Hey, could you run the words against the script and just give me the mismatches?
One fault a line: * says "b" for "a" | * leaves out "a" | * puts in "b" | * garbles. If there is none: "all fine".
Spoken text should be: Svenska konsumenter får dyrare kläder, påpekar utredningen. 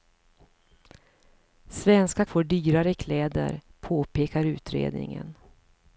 * leaves out "konsumenter"